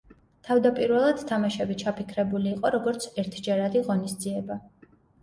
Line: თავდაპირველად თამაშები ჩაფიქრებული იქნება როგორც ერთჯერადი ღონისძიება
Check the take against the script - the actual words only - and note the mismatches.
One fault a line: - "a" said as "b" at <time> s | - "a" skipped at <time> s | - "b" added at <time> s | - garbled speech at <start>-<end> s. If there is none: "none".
- "იქნება" said as "იყო" at 2.5 s